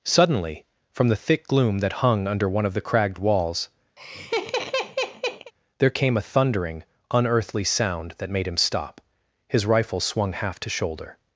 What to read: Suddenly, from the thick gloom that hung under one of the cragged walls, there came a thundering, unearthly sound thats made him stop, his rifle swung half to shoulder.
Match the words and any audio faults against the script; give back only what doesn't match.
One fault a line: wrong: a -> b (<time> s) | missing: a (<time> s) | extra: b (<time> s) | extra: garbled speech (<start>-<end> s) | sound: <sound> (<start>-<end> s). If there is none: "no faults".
sound: laugh (4.0-5.5 s)
wrong: thats -> that (8.2 s)